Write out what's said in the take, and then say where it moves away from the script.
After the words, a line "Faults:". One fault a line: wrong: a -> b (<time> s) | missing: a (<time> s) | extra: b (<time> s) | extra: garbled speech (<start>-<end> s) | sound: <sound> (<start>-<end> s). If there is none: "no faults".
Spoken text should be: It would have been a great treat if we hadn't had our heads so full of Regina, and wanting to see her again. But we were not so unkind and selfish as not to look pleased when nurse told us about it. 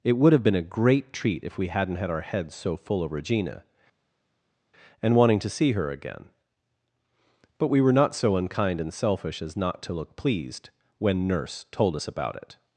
It would have been a great treat if we hadn't had our heads so full of Regina, and wanting to see her again. But we were not so unkind and selfish as not to look pleased when nurse told us about it.
Faults:
no faults